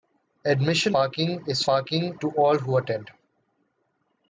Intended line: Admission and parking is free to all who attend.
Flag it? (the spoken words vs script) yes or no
yes